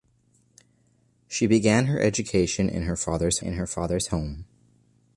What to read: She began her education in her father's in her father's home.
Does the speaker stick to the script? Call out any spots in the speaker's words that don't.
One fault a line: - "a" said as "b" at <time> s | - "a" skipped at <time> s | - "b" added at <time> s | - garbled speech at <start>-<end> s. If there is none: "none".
none